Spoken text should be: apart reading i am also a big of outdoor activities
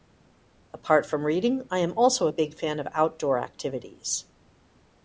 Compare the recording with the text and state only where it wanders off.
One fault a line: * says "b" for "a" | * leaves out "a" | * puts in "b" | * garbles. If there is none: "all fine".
* puts in "from"
* puts in "fan"